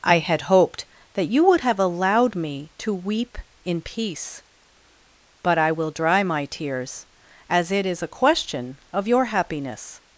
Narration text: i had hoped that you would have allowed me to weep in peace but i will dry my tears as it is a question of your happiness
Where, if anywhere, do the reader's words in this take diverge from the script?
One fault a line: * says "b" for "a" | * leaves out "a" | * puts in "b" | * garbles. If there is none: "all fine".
all fine